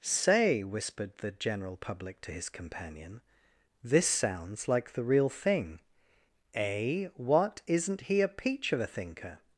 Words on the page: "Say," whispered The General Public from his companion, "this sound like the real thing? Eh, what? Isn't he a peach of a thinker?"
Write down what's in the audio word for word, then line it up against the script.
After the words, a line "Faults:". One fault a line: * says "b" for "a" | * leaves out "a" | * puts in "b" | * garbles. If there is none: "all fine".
"Say," whispered The General Public to his companion, "this sounds like the real thing? Eh, what? Isn't he a peach of a thinker?"
Faults:
* says "to" for "from"
* says "sounds" for "sound"